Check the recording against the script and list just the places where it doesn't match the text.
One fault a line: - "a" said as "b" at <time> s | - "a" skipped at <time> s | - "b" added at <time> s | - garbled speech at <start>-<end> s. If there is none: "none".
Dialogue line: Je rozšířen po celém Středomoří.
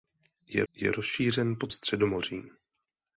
- "je" added at 0.7 s
- "celém" skipped at 1.7 s